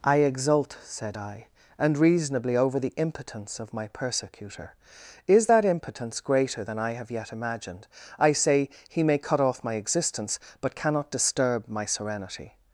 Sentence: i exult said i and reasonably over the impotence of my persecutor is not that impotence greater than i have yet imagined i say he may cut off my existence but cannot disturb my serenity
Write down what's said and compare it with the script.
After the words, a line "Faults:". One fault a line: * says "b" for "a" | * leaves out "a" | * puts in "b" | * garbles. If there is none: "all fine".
i exult said i and reasonably over the impotence of my persecutor is that impotence greater than i have yet imagined i say he may cut off my existence but cannot disturb my serenity
Faults:
* leaves out "not"